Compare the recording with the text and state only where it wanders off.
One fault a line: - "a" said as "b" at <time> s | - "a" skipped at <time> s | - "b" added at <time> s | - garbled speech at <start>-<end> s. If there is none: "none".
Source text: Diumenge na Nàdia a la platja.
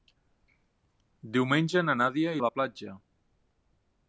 none